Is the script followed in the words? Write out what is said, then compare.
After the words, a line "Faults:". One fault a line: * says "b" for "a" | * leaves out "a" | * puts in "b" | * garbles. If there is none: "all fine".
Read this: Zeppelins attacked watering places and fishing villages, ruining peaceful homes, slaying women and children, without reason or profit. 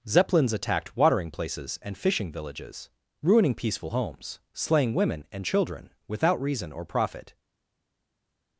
Zeppelins attacked watering places and fishing villages, ruining peaceful homes, slaying women and children, without reason or profit.
Faults:
all fine